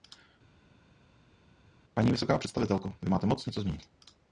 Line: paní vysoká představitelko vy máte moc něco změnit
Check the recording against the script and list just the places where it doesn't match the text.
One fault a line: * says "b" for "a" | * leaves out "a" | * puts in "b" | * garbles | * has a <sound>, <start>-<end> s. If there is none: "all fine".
all fine